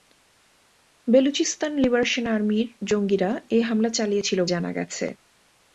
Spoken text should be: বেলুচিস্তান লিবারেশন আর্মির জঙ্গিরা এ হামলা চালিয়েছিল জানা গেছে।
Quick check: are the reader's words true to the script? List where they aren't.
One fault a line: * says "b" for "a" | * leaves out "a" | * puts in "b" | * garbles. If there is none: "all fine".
all fine